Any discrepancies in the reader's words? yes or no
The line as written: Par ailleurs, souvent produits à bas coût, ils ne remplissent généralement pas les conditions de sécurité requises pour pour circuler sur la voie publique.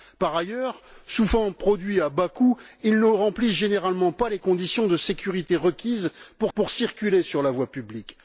no